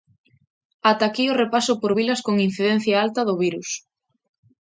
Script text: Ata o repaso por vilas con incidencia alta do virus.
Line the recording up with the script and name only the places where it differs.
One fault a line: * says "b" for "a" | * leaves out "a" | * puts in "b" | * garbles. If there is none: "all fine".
* puts in "aquí"